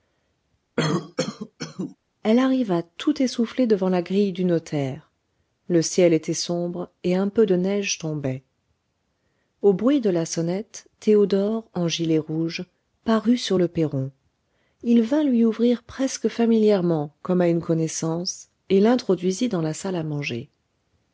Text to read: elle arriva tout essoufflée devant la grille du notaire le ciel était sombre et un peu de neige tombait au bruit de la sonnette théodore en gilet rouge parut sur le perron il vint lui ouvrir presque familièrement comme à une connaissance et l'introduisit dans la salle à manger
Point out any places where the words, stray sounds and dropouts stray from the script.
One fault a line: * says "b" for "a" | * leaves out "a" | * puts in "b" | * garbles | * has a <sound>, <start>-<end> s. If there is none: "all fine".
* has a cough, 0.8-2.0 s